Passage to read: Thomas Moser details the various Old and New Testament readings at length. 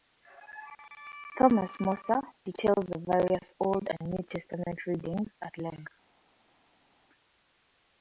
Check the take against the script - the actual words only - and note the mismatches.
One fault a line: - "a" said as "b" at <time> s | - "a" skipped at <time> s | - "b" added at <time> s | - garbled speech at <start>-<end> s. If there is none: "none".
none